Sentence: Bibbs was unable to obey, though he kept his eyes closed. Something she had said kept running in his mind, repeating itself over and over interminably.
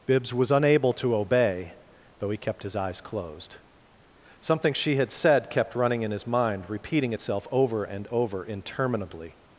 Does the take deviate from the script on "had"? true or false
false